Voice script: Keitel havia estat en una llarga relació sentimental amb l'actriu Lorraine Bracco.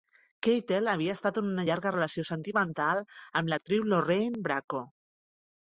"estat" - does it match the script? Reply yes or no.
yes